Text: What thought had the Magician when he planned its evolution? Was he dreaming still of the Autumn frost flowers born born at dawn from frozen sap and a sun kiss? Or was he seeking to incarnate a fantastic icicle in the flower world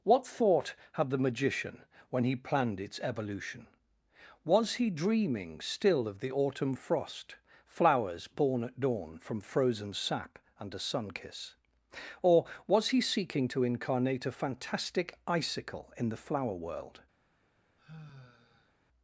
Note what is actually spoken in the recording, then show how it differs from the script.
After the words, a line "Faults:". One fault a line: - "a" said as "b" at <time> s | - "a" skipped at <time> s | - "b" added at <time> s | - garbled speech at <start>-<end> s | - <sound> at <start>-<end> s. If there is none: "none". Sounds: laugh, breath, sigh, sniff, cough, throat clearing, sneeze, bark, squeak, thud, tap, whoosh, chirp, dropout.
What thought had the Magician when he planned its evolution? Was he dreaming still of the Autumn frost flowers born at dawn from frozen sap and a sun kiss? Or was he seeking to incarnate a fantastic icicle in the flower world
Faults:
- "born" skipped at 8.6 s
- sigh at 17.8-18.7 s